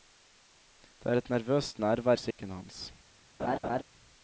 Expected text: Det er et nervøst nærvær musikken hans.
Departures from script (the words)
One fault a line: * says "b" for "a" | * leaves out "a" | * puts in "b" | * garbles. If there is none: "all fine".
all fine